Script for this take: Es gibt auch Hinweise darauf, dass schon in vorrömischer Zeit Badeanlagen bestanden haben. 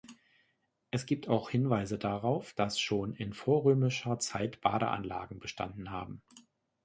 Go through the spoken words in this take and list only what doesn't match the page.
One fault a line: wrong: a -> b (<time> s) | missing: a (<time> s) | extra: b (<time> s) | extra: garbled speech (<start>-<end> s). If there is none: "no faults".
no faults